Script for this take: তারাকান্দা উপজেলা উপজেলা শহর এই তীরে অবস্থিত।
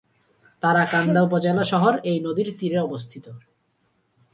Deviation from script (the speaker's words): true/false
true